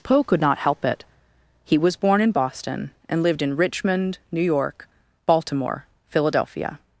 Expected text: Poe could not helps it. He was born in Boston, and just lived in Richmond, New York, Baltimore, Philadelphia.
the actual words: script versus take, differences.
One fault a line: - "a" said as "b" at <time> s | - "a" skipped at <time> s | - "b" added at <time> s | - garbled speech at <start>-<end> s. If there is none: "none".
- "helps" said as "help" at 0.6 s
- "just" skipped at 3.2 s